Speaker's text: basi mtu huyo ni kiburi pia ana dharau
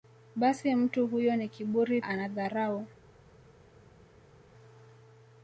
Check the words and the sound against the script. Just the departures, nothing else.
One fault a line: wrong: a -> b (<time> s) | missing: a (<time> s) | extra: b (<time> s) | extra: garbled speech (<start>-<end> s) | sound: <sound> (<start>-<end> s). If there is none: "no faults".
missing: pia (2.0 s)